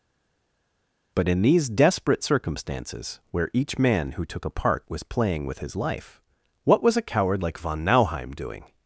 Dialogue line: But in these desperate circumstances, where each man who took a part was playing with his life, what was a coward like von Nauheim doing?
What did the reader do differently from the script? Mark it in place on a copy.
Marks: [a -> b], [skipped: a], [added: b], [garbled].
But in these desperate circumstances, where each man who took a part was playing with his life, what was a coward like von Nauheim doing?